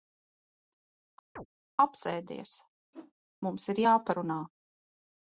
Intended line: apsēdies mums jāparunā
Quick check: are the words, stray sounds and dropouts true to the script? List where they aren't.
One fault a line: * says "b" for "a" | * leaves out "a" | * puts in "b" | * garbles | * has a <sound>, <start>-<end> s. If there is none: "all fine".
* has a chirp, 1.4-1.5 s
* has a whoosh, 2.9-3.1 s
* puts in "ir"